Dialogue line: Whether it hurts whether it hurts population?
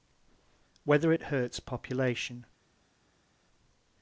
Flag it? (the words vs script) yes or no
yes